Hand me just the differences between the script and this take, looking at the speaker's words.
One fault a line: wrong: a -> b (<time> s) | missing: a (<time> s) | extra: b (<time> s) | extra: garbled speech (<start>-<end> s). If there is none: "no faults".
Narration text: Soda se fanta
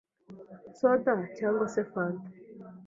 extra: cyangwa (1.4 s)